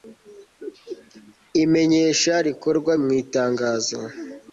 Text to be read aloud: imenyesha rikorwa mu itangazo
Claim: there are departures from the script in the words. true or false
false